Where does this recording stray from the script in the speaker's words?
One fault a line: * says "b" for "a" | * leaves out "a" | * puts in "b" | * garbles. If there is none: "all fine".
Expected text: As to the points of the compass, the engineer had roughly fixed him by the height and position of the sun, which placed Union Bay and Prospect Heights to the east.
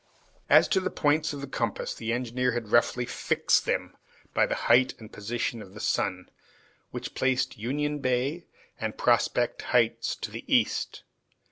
* says "them" for "him"